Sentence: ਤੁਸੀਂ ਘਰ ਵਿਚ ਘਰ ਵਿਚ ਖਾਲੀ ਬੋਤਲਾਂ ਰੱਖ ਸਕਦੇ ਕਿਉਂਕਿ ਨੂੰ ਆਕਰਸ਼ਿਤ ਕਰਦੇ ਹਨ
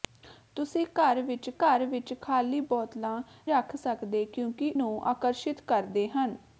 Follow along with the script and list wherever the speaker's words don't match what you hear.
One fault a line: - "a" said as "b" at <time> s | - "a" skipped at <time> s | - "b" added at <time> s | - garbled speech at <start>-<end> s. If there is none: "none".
none